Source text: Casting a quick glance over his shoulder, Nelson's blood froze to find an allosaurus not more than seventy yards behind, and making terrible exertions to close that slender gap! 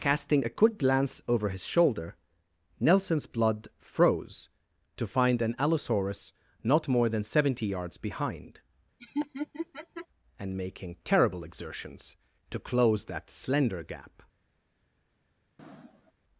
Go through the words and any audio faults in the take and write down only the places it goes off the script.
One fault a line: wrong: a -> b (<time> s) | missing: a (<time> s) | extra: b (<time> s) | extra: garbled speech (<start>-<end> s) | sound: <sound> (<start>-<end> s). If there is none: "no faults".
sound: laugh (9.0-10.1 s)
sound: sniff (15.6-16.1 s)